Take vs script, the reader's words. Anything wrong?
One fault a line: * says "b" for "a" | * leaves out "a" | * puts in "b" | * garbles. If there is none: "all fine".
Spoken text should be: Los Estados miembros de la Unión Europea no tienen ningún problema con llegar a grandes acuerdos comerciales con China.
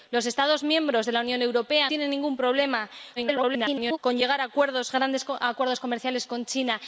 * leaves out "no"
* garbles